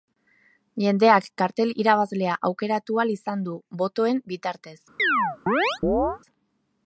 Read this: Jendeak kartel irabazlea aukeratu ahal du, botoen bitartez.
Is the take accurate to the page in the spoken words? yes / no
no